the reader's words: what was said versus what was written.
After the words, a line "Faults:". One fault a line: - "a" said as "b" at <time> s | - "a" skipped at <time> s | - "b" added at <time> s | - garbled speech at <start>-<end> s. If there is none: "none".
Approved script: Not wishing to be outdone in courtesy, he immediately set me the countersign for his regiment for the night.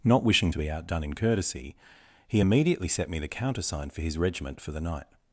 Not wishing to be outdone in courtesy, he immediately set me the countersign for his regiment for the night.
Faults:
none